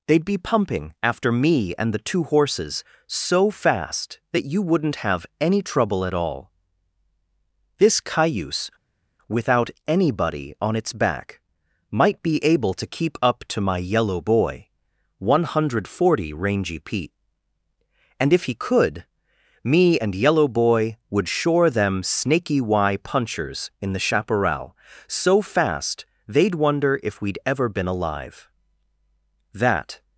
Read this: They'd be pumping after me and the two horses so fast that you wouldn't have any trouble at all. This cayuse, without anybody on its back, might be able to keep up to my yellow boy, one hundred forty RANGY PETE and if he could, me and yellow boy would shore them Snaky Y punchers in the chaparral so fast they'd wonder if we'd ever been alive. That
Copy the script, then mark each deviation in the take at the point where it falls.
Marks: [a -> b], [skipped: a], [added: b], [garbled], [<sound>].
They'd be pumping after me and the two horses so fast that you wouldn't have any trouble at all. This cayuse, without anybody on its back, might be able to keep up to my yellow boy, one hundred forty RANGY PETE and if he could, me and yellow boy would shore them Snaky Y punchers in the chaparral so fast they'd wonder if we'd ever been alive. That